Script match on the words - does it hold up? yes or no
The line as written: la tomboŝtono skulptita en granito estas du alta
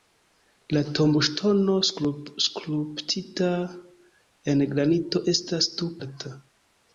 yes